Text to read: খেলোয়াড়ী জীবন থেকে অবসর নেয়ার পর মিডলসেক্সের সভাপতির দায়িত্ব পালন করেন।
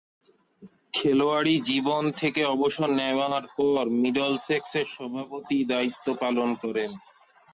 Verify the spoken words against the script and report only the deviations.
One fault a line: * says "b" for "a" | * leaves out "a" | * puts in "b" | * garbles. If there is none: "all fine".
all fine